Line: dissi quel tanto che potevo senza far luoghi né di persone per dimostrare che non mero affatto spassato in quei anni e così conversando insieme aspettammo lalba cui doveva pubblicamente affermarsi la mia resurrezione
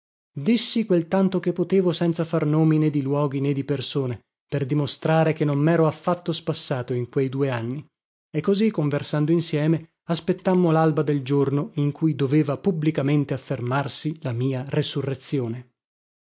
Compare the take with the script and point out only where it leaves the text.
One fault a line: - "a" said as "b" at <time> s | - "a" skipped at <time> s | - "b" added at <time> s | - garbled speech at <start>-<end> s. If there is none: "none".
- "nomi né di" added at 2.5 s
- "due" added at 7.3 s
- "del giorno in" added at 11.0 s